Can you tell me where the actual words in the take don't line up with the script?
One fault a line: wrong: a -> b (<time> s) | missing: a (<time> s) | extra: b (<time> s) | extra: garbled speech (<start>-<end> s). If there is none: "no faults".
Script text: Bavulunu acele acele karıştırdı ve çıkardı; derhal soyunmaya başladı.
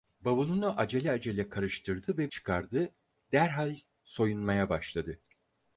no faults